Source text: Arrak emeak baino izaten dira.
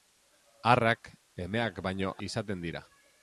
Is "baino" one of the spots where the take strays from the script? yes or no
no